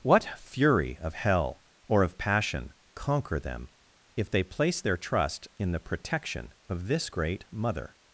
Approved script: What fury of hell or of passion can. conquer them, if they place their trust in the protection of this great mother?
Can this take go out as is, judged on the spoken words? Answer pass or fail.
fail